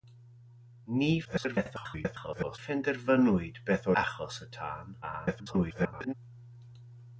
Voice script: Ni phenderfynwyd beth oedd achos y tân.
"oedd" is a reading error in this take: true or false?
true